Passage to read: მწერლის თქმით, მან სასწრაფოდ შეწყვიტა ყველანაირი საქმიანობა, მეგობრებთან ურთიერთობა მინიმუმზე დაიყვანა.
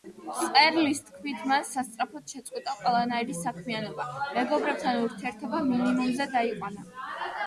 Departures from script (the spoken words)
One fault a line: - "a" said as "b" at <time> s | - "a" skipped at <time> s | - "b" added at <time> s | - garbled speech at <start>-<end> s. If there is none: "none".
none